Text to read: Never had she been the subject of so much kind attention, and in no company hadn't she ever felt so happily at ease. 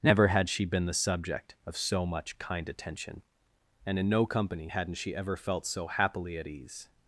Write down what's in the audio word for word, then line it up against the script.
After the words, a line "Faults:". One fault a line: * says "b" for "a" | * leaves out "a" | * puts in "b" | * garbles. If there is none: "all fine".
Never had she been the subject of so much kind attention, and in no company hadn't she ever felt so happily at ease.
Faults:
all fine